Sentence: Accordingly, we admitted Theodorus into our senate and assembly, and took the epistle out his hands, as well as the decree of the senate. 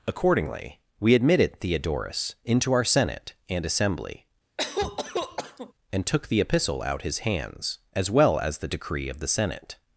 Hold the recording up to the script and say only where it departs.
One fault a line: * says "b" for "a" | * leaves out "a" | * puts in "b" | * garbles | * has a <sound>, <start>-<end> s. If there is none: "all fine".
* has a cough, 4.6-5.7 s